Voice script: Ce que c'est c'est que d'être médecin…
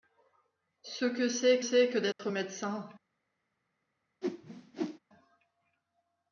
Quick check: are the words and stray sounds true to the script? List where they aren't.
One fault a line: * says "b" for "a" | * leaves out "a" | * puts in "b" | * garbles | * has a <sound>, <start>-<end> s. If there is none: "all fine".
* has a dropout, 2.1-2.2 s
* has a whoosh, 4.2-5.0 s